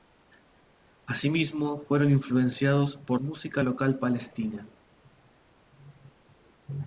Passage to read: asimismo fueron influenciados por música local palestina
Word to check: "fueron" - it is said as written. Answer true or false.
true